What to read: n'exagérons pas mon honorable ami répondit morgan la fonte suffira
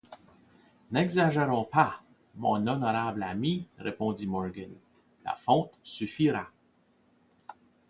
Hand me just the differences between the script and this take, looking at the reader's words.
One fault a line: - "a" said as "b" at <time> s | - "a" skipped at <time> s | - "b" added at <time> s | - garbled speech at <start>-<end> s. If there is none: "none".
none